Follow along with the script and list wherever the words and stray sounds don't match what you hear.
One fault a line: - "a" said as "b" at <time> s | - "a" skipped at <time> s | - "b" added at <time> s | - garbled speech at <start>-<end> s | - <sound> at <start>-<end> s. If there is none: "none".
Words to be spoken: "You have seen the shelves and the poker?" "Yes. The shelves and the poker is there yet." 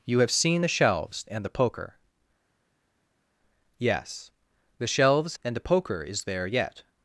none